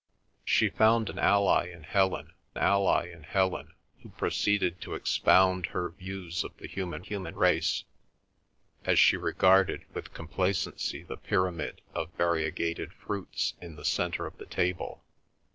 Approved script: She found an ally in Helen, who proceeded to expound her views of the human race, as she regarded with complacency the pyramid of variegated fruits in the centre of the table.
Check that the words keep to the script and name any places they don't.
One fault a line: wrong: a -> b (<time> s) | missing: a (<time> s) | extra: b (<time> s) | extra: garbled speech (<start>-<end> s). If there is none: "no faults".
extra: ally in Helen (2.6 s)
extra: human (7.0 s)